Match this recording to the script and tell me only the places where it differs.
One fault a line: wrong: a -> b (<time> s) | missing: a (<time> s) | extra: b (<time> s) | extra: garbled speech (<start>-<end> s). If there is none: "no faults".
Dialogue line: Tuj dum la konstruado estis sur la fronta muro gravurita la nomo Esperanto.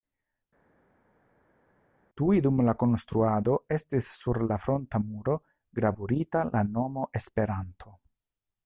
no faults